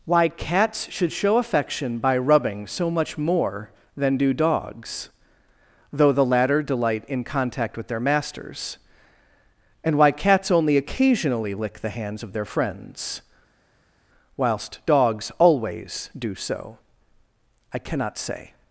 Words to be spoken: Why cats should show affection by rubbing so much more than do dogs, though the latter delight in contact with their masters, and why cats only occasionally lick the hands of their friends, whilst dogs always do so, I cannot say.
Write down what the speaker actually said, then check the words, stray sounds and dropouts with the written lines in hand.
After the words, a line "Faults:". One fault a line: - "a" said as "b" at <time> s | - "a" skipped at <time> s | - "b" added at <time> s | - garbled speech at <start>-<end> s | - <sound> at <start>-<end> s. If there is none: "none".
Why cats should show affection by rubbing so much more than do dogs, though the latter delight in contact with their masters, and why cats only occasionally lick the hands of their friends, whilst dogs always do so, I cannot say.
Faults:
none